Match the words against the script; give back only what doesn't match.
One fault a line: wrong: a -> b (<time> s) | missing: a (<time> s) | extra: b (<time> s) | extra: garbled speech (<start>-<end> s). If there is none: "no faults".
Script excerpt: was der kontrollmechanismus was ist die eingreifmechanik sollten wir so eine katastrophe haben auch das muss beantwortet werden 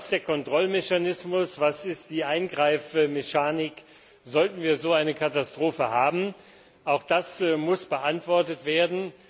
no faults